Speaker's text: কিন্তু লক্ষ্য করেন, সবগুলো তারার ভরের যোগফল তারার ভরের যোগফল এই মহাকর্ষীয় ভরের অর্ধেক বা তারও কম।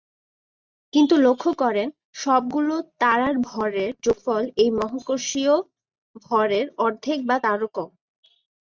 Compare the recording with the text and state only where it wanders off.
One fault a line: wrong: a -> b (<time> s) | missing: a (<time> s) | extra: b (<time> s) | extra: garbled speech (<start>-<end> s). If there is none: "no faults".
missing: তারার ভরের যোগফল (4.4 s)